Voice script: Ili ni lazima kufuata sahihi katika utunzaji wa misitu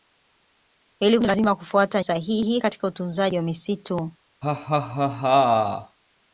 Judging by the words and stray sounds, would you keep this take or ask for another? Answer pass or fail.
fail